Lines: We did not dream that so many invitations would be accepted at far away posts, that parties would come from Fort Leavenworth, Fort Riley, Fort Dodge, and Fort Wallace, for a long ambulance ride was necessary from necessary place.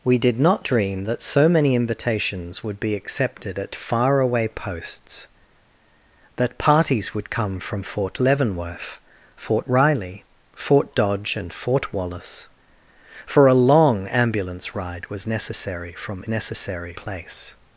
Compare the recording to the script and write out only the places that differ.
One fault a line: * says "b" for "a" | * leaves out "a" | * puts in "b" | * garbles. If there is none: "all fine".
all fine